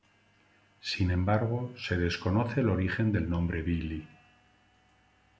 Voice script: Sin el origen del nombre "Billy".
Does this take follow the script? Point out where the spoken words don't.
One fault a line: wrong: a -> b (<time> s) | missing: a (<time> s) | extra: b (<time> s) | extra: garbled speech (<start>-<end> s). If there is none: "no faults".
extra: embargo se desconoce (1.1 s)